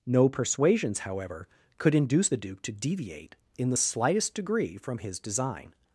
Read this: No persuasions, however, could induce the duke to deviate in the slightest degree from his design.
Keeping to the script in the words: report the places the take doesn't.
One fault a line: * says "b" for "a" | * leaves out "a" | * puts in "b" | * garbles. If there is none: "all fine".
all fine